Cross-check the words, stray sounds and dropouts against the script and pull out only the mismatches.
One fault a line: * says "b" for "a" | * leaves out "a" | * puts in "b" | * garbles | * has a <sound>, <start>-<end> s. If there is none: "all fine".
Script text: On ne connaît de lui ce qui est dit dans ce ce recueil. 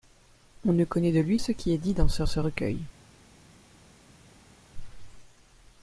all fine